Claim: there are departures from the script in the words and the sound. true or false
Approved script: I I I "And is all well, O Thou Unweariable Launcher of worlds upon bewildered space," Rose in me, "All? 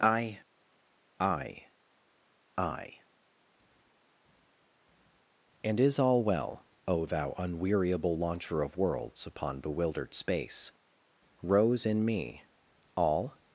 false